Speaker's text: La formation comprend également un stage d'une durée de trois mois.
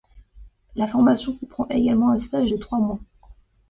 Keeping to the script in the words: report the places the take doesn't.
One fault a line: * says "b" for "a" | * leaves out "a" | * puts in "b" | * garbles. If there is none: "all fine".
* leaves out "d'une durée"